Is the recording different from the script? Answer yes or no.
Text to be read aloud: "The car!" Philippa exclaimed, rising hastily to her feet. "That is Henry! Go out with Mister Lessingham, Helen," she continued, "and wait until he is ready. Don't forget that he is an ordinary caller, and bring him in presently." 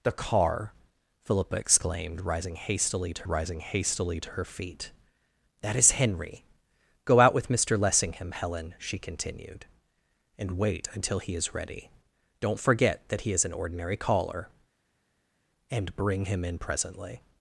yes